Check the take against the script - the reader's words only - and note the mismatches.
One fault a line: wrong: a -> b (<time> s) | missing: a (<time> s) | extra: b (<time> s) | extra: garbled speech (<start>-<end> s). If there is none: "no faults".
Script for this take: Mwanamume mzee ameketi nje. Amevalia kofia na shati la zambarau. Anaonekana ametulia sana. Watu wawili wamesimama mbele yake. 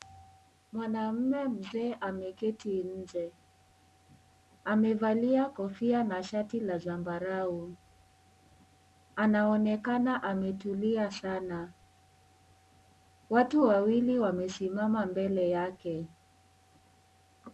no faults